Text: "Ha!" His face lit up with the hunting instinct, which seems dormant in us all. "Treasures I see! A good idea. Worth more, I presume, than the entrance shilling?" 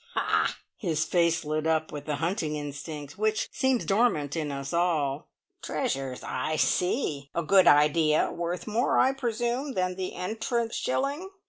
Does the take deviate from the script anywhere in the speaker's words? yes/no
no